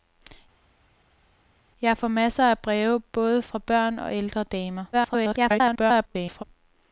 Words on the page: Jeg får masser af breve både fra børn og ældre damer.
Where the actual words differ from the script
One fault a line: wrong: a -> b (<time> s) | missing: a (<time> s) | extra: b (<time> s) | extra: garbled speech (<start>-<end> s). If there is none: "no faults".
extra: garbled speech (4.9-6.4 s)